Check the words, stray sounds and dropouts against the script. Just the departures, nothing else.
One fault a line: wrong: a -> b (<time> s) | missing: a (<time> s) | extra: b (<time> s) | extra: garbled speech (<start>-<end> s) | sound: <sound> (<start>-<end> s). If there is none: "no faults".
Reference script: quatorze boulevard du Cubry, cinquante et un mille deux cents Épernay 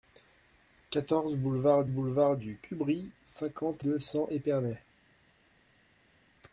extra: boulevard (1.9 s)
missing: et un mille (3.8 s)